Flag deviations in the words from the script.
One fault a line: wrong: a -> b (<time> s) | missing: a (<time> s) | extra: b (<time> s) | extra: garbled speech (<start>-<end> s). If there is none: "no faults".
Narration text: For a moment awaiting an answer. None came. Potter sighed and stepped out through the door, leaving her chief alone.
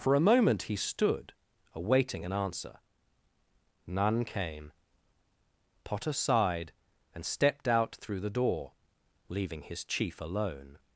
extra: he stood (0.6 s)
wrong: her -> his (9.6 s)